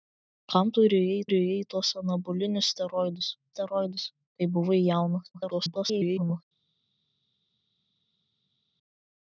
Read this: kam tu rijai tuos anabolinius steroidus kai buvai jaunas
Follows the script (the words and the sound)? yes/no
no